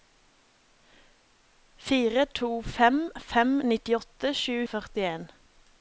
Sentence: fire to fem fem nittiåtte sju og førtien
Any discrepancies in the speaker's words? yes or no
no